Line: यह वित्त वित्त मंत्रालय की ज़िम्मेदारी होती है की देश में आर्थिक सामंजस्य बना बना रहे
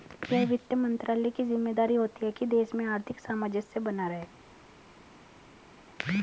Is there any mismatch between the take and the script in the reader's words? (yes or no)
yes